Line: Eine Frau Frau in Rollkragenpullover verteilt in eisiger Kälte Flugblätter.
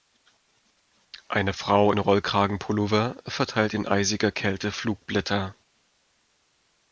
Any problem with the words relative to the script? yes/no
yes